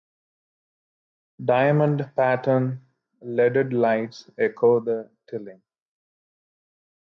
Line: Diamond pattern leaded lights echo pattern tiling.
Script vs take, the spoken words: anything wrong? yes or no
yes